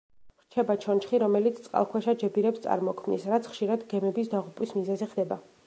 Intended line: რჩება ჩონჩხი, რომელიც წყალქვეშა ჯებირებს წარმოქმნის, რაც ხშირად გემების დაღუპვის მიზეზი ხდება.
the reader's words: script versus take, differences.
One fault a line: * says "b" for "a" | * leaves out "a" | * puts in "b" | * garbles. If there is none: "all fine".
all fine